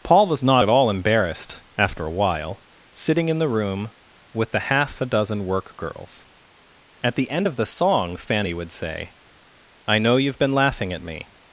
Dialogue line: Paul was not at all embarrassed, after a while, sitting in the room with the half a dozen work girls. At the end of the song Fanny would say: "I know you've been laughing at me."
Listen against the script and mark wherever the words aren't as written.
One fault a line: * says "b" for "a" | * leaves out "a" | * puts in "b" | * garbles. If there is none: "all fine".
all fine